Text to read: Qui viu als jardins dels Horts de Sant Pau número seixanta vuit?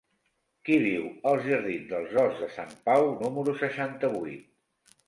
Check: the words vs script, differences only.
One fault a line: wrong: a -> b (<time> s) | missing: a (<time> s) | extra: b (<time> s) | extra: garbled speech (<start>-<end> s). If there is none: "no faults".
no faults